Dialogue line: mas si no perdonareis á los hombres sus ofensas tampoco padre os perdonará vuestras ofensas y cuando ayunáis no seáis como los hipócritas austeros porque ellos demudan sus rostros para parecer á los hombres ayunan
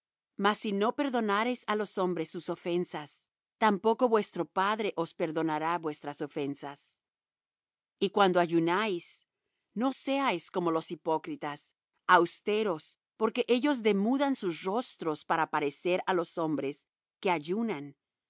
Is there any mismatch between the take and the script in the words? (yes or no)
yes